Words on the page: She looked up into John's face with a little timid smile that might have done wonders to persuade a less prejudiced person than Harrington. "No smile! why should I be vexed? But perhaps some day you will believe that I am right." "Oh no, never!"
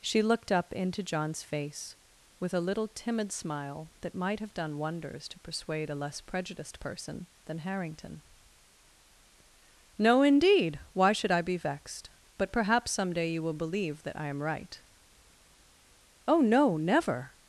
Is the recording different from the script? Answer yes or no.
yes